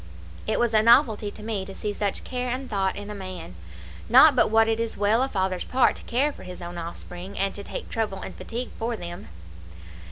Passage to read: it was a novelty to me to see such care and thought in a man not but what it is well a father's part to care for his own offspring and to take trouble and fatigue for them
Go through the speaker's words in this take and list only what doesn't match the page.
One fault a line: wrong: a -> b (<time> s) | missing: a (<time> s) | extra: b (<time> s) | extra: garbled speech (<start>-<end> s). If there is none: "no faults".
no faults